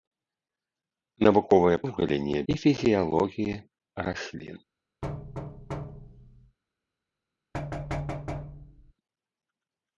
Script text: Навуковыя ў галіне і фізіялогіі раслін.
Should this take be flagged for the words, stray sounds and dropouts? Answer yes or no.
yes